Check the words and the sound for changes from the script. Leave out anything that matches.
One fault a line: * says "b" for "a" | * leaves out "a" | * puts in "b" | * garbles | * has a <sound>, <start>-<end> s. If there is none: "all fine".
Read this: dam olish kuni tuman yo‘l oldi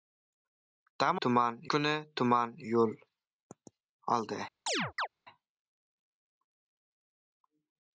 * says "tuman" for "olish"
* has a chirp, 4.7-5.1 s